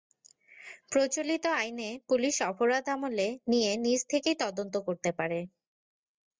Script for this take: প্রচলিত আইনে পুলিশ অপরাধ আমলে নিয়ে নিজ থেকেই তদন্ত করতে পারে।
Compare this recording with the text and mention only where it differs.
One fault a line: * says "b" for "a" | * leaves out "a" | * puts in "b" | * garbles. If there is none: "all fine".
all fine